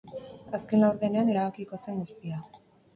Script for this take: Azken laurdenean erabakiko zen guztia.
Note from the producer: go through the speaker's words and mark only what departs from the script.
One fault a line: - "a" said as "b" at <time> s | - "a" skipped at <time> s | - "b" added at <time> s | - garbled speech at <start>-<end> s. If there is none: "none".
none